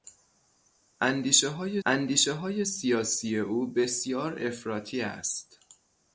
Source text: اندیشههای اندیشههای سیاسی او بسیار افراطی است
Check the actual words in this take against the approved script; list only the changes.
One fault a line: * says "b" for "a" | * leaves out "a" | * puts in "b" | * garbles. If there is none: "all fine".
all fine